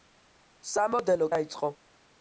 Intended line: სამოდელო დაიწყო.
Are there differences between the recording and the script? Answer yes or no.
no